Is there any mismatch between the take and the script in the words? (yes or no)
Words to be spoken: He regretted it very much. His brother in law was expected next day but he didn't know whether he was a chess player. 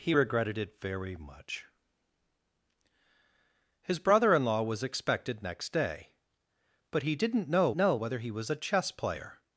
yes